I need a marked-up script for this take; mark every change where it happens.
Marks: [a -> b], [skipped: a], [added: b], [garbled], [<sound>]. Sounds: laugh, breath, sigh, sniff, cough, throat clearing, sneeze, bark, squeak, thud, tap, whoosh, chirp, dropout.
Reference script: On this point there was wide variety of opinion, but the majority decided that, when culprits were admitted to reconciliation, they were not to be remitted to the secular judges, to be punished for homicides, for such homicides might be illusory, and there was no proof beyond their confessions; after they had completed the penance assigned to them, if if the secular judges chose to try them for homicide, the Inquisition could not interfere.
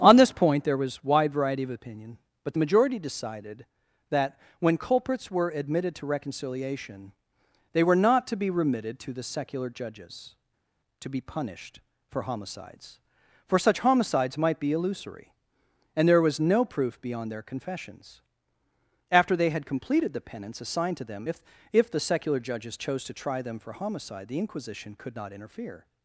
On this point there was wide variety of opinion, but the majority decided that, when culprits were admitted to reconciliation, they were not to be remitted to the secular judges, to be punished for homicides, for such homicides might be illusory, and there was no proof beyond their confessions; after they had completed the penance assigned to them, if if the secular judges chose to try them for homicide, the Inquisition could not interfere.